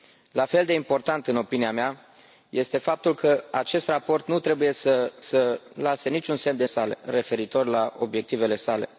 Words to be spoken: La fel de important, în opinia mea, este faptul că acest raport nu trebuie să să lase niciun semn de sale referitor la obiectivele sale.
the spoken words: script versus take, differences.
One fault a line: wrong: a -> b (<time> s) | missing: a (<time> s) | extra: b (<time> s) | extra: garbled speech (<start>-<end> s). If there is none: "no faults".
no faults